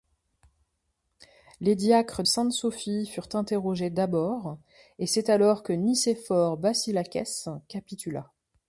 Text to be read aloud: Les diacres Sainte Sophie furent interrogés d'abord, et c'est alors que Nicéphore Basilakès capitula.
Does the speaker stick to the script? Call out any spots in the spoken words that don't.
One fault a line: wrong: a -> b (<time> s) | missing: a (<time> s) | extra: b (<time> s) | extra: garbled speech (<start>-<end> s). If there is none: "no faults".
no faults